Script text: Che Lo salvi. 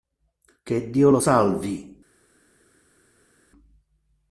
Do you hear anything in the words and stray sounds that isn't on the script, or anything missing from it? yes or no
yes